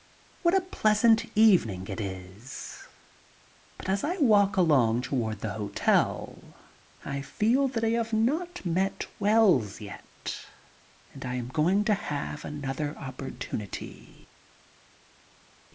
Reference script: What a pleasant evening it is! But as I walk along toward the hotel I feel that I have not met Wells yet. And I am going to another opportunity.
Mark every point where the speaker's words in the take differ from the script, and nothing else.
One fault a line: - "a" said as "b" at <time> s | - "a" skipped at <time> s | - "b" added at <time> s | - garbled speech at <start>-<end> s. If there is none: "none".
- "have" added at 11.9 s